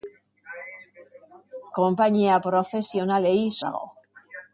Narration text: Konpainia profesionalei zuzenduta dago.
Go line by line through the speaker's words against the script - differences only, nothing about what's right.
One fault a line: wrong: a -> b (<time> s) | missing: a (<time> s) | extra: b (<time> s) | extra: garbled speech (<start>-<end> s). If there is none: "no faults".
missing: zuzenduta (3.4 s)